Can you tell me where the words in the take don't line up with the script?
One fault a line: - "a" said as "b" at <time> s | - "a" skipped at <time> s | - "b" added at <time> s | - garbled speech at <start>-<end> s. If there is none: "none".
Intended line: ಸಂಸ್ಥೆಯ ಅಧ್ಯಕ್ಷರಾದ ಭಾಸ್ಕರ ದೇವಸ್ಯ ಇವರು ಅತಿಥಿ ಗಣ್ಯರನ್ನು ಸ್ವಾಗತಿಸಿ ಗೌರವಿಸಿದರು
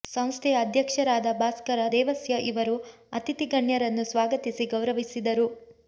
none